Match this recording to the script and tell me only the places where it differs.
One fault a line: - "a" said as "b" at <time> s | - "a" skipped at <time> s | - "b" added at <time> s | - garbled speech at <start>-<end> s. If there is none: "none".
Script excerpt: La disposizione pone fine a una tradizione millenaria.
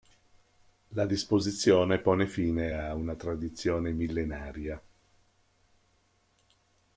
none